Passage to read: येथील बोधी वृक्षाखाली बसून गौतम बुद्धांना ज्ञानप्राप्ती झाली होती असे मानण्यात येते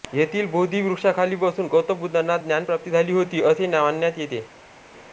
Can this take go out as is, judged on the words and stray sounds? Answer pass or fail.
pass